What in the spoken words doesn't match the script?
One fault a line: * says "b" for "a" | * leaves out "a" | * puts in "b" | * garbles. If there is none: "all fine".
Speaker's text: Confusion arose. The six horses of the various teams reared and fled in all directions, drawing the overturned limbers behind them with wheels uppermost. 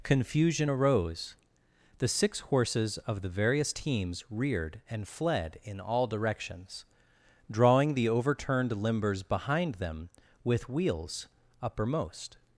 all fine